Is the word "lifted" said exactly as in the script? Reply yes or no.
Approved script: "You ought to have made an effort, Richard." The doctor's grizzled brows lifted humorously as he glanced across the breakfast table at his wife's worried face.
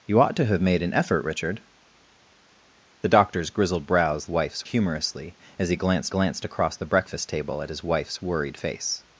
no